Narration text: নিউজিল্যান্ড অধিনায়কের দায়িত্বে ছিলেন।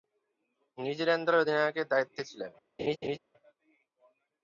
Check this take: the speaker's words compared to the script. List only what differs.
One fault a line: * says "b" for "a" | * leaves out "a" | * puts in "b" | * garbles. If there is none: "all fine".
* puts in "দলের"